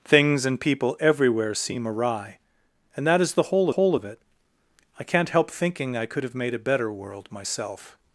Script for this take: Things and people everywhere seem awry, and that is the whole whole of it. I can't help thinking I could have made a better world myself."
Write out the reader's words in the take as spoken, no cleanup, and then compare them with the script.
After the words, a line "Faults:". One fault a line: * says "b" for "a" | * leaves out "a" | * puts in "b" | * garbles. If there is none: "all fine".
Things and people everywhere seem awry, and that is the whole whole of it. I can't help thinking I could have made a better world myself."
Faults:
all fine